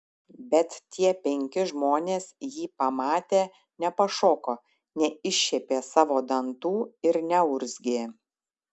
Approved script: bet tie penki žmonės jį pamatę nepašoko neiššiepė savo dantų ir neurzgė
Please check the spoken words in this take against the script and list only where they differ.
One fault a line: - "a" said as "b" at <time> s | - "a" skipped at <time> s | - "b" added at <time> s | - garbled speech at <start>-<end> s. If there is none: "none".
none